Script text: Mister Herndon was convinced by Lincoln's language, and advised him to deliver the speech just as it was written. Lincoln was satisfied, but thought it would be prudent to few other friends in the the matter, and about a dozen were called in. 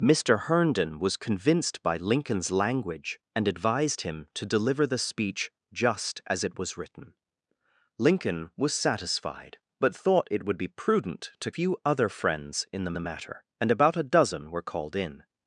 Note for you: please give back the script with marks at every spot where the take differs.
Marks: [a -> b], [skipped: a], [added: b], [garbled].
Mister Herndon was convinced by Lincoln's language, and advised him to deliver the speech just as it was written. Lincoln was satisfied, but thought it would be prudent to few other friends in the the matter, and about a dozen were called in.